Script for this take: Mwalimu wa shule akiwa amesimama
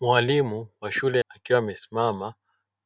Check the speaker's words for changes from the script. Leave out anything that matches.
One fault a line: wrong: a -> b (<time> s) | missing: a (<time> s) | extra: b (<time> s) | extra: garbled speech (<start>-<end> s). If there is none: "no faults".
no faults